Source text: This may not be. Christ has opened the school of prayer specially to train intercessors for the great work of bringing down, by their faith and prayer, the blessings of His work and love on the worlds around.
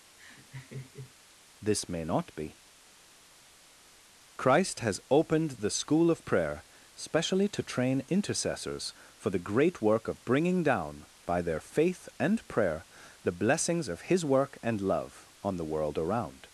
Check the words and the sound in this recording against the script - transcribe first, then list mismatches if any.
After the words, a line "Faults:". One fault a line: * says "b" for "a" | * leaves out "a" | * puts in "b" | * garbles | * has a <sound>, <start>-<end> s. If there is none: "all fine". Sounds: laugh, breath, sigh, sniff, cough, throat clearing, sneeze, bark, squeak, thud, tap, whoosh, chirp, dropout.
This may not be. Christ has opened the school of prayer specially to train intercessors for the great work of bringing down, by their faith and prayer, the blessings of His work and love on the world around.
Faults:
* has a laugh, 0.2-1.1 s
* says "world" for "worlds"